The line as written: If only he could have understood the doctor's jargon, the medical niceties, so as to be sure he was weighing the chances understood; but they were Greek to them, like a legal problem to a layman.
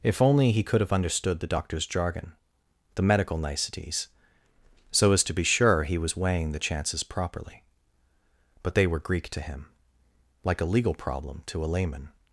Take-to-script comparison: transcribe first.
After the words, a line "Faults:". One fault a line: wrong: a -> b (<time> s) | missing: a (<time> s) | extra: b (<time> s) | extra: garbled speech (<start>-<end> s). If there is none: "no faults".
If only he could have understood the doctor's jargon, the medical niceties, so as to be sure he was weighing the chances properly; but they were Greek to him, like a legal problem to a layman.
Faults:
wrong: understood -> properly (7.0 s)
wrong: them -> him (9.4 s)